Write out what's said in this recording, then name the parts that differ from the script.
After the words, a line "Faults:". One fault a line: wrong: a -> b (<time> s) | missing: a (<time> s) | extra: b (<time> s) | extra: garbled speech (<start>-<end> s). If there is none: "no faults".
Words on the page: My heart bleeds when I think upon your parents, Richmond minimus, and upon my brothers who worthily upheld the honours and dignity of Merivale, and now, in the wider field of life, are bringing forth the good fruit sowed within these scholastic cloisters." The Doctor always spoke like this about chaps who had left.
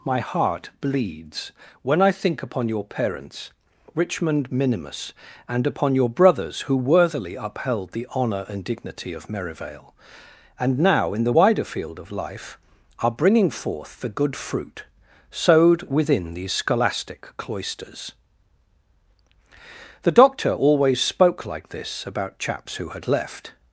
My heart bleeds when I think upon your parents, Richmond minimus, and upon your brothers who worthily upheld the honour and dignity of Merivale, and now, in the wider field of life, are bringing forth the good fruit sowed within these scholastic cloisters." The Doctor always spoke like this about chaps who had left.
Faults:
wrong: my -> your (5.9 s)
wrong: honours -> honour (8.2 s)